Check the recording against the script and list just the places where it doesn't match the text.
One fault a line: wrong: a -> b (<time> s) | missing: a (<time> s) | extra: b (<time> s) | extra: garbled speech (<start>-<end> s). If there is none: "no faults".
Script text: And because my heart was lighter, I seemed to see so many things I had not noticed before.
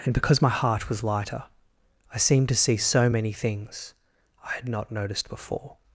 no faults